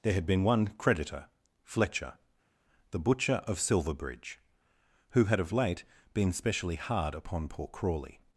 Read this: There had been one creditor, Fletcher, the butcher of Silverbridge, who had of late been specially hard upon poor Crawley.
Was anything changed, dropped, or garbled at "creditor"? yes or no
no